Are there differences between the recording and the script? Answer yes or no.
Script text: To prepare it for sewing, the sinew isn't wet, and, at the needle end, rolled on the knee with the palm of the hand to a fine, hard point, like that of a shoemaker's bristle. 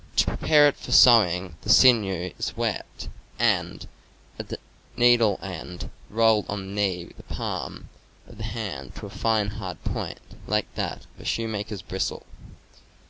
yes